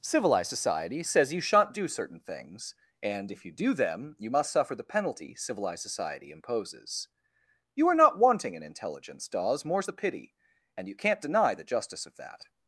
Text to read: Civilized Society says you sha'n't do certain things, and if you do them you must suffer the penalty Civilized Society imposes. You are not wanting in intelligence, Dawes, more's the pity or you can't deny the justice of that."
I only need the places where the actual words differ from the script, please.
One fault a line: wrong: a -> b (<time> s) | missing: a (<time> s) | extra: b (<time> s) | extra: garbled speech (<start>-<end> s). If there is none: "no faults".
wrong: or -> and (10.8 s)